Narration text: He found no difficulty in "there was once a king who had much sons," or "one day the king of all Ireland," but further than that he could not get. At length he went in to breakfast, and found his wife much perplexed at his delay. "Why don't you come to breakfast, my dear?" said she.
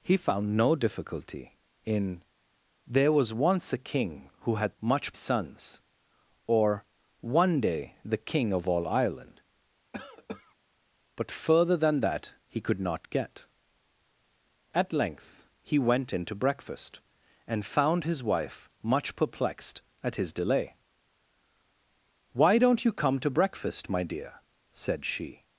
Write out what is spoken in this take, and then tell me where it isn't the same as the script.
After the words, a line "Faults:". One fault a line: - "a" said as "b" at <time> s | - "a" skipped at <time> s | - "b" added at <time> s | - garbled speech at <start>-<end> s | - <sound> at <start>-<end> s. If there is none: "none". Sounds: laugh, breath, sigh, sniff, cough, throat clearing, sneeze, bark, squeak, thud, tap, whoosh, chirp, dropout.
He found no difficulty in "there was once a king who had much sons," or "one day the king of all Ireland," but further than that he could not get. At length he went in to breakfast, and found his wife much perplexed at his delay. "Why don't you come to breakfast, my dear?" said she.
Faults:
- cough at 9.9-10.5 s